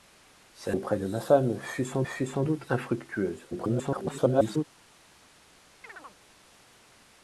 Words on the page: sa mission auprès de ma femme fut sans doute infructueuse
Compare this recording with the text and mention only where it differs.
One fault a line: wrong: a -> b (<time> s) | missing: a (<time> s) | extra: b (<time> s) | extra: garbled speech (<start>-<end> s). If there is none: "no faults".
missing: mission (0.7 s)
extra: fut sans (2.0 s)
extra: garbled speech (3.5-4.6 s)